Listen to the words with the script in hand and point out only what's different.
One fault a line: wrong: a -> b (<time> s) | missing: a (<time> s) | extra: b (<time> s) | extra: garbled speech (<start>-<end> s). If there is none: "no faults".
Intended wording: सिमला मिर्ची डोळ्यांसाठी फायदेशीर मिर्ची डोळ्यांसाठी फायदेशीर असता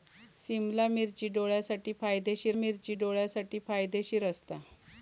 no faults